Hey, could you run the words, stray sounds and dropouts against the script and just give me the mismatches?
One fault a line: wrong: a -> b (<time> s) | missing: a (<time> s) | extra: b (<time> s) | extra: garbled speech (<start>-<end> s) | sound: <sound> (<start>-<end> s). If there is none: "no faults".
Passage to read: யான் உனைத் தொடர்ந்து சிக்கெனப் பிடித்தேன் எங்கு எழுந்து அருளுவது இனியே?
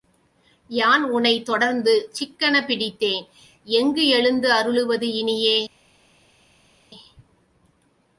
no faults